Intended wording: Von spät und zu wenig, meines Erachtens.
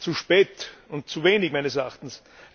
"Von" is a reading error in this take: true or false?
true